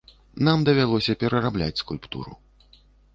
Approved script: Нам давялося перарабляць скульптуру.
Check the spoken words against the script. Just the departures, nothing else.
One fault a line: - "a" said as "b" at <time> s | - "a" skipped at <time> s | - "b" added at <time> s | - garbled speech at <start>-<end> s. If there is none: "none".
none